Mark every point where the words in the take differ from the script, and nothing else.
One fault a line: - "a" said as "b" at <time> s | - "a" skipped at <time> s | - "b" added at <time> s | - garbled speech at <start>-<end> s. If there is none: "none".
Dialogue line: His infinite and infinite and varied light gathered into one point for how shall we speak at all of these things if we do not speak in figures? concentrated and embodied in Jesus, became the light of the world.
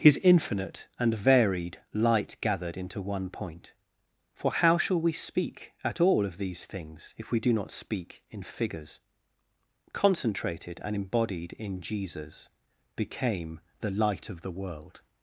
- "infinite and" skipped at 1.1 s